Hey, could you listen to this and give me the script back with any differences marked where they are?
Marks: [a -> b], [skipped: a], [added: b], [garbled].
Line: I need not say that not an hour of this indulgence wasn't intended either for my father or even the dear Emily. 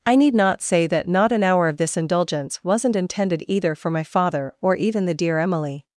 I need not say that not an hour of this indulgence wasn't intended either for my father or even the dear Emily.